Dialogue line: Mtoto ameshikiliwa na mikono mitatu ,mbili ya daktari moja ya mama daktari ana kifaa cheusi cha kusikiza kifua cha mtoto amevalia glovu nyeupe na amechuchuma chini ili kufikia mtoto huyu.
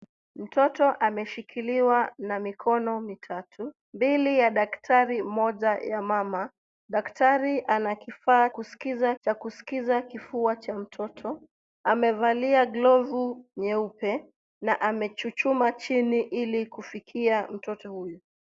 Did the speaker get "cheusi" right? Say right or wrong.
wrong